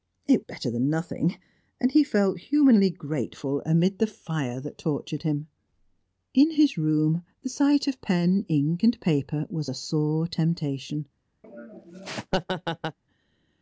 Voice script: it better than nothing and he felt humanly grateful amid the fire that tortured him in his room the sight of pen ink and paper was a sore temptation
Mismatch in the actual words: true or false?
false